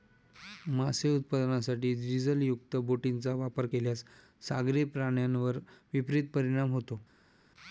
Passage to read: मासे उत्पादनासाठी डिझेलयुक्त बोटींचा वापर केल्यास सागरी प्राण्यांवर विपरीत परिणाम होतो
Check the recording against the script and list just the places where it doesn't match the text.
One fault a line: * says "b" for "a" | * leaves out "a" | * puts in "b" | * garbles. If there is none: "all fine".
all fine